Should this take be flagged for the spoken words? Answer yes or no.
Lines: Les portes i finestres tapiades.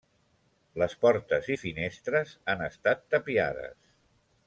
yes